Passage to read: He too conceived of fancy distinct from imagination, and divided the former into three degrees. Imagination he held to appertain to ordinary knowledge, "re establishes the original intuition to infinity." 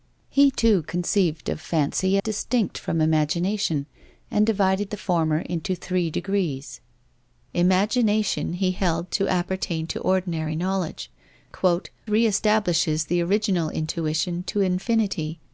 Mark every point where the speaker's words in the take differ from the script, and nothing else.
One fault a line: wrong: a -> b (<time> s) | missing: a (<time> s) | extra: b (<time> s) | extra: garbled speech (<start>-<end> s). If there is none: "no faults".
no faults